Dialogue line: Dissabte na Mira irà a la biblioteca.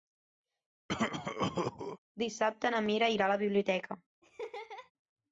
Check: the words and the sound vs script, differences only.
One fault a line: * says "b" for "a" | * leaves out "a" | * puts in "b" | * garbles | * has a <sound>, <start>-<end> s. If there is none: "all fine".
* has a cough, 0.9-2.0 s
* has a laugh, 4.2-4.9 s